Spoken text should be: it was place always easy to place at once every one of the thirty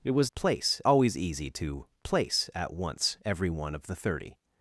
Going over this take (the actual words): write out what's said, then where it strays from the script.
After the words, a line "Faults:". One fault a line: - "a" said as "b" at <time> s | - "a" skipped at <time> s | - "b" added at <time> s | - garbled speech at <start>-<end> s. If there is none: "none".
it was place always easy to place at once every one of the thirty
Faults:
none